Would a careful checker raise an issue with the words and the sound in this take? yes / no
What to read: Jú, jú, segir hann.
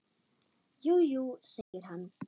yes